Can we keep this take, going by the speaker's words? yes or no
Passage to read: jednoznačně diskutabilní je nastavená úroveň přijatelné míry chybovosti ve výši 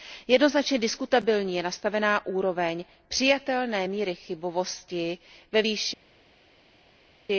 yes